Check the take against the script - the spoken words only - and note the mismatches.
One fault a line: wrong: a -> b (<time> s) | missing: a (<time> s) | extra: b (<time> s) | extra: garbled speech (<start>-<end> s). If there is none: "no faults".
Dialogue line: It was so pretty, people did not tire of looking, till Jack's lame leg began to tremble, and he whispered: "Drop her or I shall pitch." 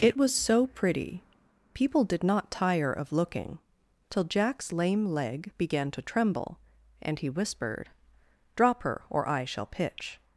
no faults